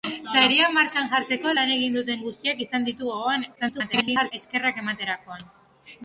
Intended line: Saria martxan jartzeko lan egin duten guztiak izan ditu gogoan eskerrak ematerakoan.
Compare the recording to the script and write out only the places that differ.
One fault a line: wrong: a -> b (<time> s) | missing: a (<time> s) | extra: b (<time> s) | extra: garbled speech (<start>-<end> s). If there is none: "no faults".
extra: garbled speech (3.6-4.3 s)